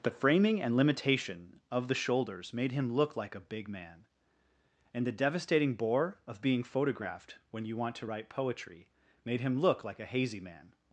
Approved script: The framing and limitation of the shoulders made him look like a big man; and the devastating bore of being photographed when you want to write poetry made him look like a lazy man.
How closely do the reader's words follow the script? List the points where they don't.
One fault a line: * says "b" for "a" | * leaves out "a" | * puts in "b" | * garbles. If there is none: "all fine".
* says "hazy" for "lazy"